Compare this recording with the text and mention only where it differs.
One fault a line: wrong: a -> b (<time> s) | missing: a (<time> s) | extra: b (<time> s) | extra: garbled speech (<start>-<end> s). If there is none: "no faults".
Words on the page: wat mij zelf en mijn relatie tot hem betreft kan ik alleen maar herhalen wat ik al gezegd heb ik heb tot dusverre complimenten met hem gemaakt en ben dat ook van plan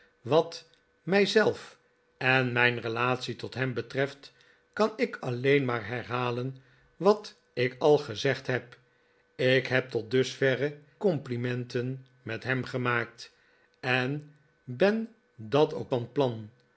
no faults